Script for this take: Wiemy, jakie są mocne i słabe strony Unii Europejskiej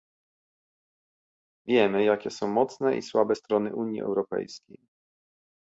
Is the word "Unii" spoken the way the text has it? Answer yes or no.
yes